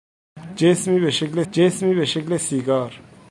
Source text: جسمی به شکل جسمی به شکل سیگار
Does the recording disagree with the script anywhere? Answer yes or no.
no